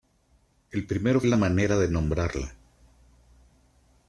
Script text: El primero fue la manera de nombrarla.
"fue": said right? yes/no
no